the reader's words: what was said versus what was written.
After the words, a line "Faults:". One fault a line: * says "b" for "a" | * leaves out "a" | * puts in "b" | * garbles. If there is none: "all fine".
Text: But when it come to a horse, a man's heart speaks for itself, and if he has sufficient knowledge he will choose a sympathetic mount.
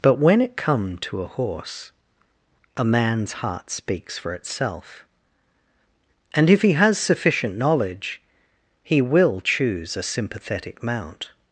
But when it come to a horse, a man's heart speaks for itself, and if he has sufficient knowledge he will choose a sympathetic mount.
Faults:
all fine